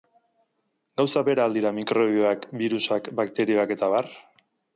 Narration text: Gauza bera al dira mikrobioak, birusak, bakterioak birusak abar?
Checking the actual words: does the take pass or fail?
fail